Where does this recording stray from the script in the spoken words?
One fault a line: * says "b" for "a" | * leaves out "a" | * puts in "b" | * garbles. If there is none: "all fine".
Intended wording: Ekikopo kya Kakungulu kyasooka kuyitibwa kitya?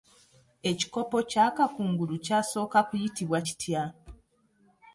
all fine